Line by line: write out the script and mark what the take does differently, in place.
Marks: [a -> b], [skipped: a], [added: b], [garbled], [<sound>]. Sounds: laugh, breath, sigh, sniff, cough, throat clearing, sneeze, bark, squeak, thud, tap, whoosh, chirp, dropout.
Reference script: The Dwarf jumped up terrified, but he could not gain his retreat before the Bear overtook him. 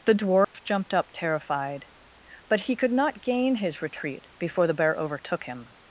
The Dwarf [dropout] jumped up terrified, but he could not gain his retreat before the Bear overtook him.